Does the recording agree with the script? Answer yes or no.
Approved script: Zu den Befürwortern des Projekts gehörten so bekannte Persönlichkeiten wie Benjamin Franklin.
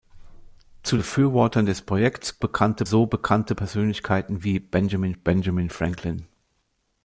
no